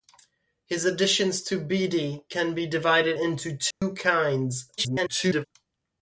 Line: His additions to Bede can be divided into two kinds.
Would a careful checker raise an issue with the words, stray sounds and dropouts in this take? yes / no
yes